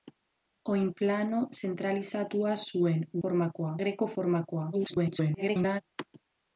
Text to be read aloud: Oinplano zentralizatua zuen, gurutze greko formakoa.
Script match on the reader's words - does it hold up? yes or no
no